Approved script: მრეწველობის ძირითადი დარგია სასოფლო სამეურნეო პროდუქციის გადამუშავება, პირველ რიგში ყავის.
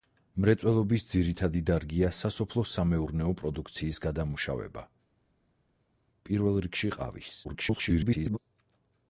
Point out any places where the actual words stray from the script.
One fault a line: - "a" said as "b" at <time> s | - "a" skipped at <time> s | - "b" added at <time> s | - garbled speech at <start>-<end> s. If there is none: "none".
- garbled speech at 7.4-8.4 s